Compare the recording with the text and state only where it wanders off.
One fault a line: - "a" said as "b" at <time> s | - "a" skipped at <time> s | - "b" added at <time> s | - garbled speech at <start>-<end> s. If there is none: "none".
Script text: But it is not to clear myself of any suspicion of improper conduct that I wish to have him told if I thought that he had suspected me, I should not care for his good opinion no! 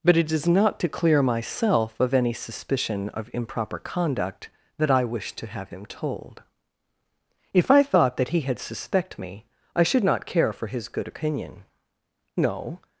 - "suspected" said as "suspect" at 8.6 s